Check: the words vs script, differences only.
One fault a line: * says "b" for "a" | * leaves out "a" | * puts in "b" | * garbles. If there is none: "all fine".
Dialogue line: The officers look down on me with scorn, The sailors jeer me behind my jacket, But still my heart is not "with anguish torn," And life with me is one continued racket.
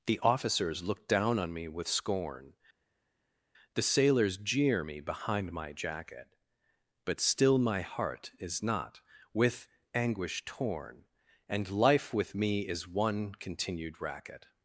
all fine